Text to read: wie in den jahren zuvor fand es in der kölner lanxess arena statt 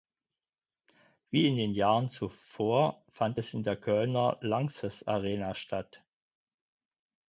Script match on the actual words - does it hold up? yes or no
yes